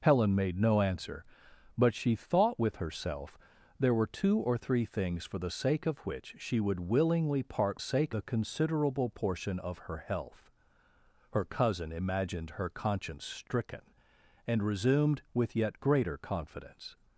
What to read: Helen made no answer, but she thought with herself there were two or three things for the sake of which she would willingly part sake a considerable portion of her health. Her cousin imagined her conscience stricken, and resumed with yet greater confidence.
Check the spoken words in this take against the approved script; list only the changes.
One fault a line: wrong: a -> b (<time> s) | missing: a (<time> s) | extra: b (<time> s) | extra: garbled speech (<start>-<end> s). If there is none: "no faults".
no faults